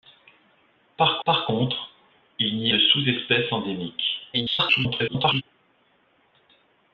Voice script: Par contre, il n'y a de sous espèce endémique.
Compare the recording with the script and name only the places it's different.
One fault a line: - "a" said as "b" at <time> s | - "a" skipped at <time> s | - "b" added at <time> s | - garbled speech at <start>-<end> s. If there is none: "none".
- "par" added at 1.2 s
- "a" skipped at 2.7 s
- garbled speech at 4.3-5.4 s